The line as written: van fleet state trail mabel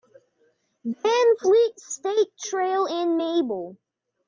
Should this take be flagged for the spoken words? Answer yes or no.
yes